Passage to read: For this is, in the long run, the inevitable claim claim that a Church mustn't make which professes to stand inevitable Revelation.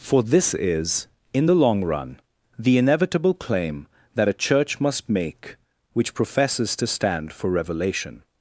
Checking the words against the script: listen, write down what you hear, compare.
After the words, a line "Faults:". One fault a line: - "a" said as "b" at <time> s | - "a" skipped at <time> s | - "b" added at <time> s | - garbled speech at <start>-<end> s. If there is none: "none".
For this is, in the long run, the inevitable claim that a Church must make which professes to stand for Revelation.
Faults:
- "claim" skipped at 3.9 s
- "mustn't" said as "must" at 4.8 s
- "inevitable" said as "for" at 7.3 s